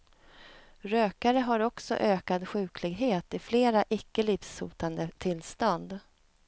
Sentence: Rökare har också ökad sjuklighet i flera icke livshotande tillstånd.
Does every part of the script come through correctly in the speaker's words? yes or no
yes